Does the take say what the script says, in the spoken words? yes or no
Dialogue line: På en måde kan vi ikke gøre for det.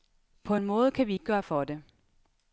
yes